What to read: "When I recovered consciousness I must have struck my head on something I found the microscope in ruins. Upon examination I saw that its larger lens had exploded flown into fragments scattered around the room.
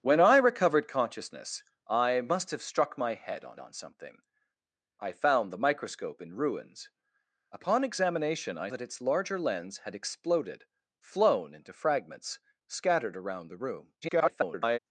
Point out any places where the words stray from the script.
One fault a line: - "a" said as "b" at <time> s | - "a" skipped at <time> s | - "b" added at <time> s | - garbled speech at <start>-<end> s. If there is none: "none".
- "on" added at 3.6 s
- "saw" skipped at 8.7 s
- garbled speech at 14.0-14.8 s